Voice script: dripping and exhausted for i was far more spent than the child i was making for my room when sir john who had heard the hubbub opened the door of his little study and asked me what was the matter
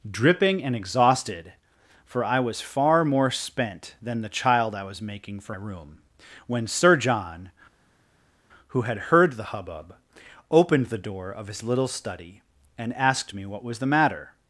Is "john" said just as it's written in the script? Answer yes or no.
yes